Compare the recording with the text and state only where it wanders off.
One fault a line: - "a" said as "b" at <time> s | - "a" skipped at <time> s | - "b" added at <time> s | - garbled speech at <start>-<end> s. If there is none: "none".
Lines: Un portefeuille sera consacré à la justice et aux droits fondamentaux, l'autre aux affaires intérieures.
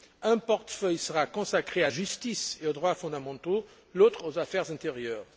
- "la" skipped at 1.9 s